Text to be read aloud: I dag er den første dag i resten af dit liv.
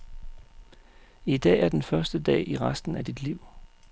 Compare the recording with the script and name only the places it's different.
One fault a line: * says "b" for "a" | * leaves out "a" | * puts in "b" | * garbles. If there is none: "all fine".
all fine